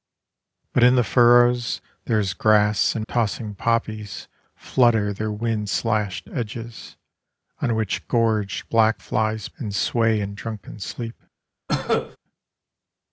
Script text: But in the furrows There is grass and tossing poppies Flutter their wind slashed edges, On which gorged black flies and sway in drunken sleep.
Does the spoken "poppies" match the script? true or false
true